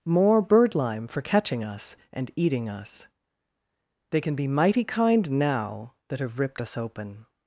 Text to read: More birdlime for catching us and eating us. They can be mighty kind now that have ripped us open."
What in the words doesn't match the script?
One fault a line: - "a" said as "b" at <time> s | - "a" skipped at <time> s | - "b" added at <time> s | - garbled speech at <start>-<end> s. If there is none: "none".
none